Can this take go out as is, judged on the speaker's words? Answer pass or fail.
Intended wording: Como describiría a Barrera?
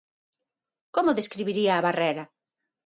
pass